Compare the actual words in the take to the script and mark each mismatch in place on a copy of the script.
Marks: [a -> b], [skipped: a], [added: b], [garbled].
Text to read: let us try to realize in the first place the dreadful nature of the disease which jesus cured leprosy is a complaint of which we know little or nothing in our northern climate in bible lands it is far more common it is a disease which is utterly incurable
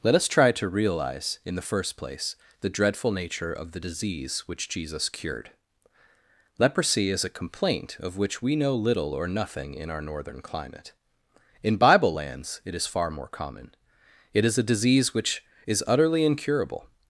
let us try to realize in the first place the dreadful nature of the disease which jesus cured leprosy is a complaint of which we know little or nothing in our northern climate in bible lands it is far more common it is a disease which is utterly incurable